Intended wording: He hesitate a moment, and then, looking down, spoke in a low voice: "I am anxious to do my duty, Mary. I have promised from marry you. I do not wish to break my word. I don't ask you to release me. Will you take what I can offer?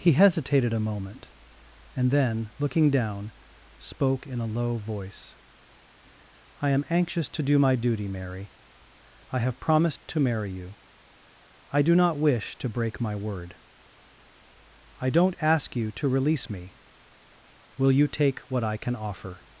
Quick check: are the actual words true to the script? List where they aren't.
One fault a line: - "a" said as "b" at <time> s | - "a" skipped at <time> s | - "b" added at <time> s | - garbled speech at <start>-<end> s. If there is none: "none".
- "hesitate" said as "hesitated" at 0.1 s
- "from" said as "to" at 10.1 s